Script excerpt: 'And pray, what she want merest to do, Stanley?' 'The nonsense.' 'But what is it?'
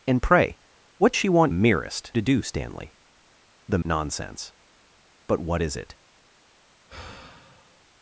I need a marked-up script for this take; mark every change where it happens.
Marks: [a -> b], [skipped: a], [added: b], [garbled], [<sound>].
'And pray, what she want merest to do, Stanley?' 'The nonsense.' 'But what is it?' [sigh]